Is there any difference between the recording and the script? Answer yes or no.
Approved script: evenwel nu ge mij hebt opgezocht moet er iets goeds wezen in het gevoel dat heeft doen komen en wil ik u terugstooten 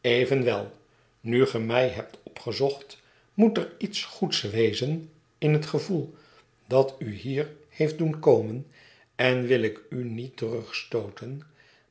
yes